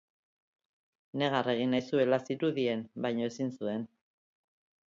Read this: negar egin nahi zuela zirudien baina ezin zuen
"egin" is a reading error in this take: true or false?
false